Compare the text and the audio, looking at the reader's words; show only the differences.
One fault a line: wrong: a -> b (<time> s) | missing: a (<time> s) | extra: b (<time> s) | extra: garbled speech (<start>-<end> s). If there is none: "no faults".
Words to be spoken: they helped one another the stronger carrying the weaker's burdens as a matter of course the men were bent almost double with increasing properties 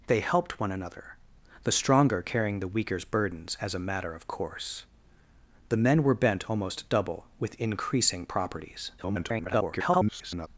extra: garbled speech (9.0-10.5 s)